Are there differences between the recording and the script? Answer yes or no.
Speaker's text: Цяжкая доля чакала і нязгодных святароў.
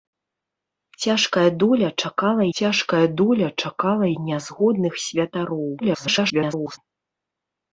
yes